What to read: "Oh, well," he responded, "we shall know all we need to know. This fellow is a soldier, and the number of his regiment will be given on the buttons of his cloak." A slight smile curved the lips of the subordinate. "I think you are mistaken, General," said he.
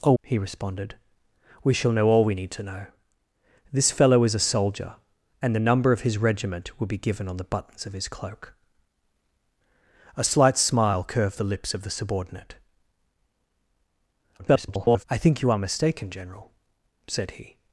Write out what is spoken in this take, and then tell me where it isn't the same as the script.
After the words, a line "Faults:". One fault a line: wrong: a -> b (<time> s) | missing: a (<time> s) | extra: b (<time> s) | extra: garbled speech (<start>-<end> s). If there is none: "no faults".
"Oh," he responded, "we shall know all we need to know. This fellow is a soldier, and the number of his regiment will be given on the buttons of his cloak." A slight smile curved the lips of the subordinate. [garbled] "I think you are mistaken, General," said he.
Faults:
missing: well (0.1 s)
extra: garbled speech (14.4-15.0 s)